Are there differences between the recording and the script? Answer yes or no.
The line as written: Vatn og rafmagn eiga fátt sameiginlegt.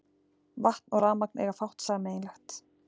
no